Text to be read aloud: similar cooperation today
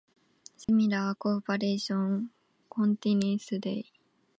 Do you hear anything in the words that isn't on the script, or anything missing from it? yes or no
yes